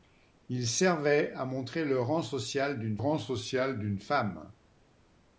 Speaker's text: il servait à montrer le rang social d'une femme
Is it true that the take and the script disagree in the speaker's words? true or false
true